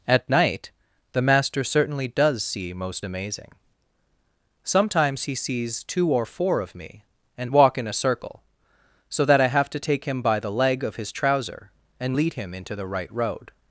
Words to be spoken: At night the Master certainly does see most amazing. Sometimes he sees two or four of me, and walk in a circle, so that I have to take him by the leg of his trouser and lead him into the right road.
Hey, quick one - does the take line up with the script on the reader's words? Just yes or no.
yes